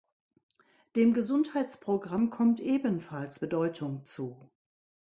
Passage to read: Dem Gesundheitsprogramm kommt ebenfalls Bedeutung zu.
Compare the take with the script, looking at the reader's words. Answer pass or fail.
pass